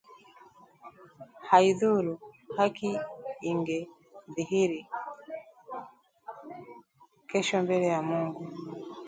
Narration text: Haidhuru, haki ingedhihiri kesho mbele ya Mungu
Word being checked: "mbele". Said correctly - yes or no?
yes